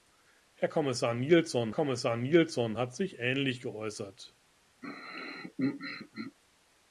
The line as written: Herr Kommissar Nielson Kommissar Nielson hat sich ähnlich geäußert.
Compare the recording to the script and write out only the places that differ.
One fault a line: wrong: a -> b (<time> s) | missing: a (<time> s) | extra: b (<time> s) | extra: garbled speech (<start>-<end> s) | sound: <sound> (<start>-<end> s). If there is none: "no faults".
sound: throat clearing (4.8-6.4 s)